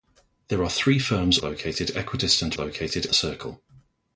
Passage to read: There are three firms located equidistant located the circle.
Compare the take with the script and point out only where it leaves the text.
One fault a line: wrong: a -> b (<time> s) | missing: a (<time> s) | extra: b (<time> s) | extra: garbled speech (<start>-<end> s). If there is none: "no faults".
no faults